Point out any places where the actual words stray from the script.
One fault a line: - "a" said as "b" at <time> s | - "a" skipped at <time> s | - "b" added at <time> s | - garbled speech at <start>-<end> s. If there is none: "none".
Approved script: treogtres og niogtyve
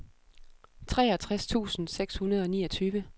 - "tusind seks hundrede" added at 1.5 s